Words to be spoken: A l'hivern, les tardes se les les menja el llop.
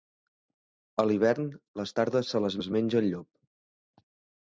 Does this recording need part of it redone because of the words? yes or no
no